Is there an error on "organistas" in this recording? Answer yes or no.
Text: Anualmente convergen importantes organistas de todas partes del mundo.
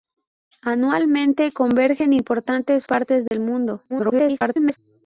yes